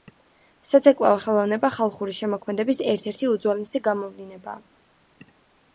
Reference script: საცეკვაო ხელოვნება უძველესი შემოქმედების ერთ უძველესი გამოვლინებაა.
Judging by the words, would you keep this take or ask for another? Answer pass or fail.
fail